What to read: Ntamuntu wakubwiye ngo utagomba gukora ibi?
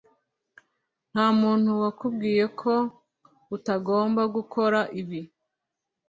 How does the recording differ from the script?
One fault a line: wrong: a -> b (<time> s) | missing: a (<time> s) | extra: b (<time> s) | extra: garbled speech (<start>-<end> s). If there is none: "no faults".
wrong: ngo -> ko (2.6 s)